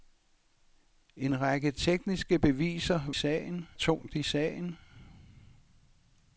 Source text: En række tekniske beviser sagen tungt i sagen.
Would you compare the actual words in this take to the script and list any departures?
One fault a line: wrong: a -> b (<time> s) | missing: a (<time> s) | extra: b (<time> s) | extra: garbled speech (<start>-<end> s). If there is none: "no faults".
no faults